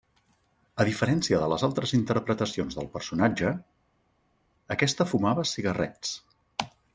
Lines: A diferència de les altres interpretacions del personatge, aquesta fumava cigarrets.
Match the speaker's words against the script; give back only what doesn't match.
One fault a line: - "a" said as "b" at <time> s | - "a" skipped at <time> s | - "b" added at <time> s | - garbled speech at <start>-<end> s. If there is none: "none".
none